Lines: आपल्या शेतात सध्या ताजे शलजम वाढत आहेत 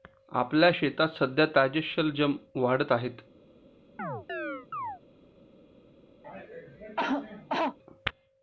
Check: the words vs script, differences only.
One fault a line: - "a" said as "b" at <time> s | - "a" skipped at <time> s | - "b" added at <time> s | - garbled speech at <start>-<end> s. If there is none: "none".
none